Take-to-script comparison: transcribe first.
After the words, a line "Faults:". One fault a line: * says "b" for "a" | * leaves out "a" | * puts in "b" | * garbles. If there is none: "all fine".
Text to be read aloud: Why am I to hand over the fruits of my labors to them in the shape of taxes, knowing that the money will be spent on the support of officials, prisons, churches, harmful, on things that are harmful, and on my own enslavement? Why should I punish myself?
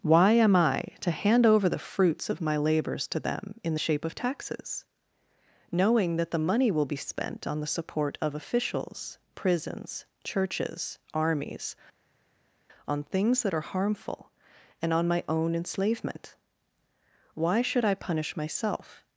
Why am I to hand over the fruits of my labors to them in the shape of taxes, knowing that the money will be spent on the support of officials, prisons, churches, armies, on things that are harmful, and on my own enslavement? Why should I punish myself?
Faults:
* says "armies" for "harmful"